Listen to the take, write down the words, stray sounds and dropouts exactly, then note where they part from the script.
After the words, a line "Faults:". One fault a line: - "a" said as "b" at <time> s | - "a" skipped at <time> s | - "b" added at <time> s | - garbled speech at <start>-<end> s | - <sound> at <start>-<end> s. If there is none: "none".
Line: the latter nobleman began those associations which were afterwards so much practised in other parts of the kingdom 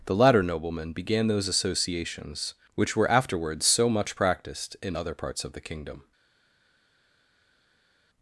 the latter nobleman began those associations which were afterwards so much practised in other parts of the kingdom
Faults:
none